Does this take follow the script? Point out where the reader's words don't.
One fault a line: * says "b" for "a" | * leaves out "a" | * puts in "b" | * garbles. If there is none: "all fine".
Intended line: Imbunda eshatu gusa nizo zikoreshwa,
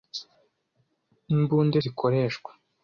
* leaves out "eshatu gusa nizo"